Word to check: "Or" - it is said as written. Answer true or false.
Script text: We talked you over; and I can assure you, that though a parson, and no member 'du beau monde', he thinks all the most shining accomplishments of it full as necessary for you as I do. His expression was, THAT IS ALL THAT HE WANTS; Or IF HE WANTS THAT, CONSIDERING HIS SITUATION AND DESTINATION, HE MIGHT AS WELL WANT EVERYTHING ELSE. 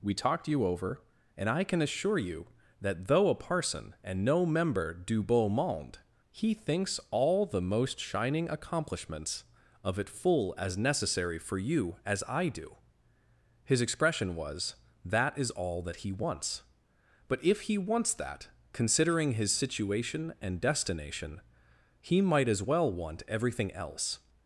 false